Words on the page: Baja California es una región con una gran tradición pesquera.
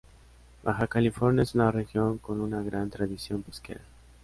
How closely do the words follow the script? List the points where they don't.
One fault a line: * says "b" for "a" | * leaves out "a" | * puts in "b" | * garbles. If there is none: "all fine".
all fine